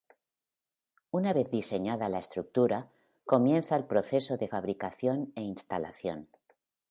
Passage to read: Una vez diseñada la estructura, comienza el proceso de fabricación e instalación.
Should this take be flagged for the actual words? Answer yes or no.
no